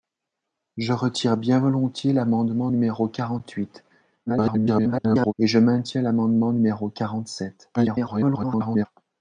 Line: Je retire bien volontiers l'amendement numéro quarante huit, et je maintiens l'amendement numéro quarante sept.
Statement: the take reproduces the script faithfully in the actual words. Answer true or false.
false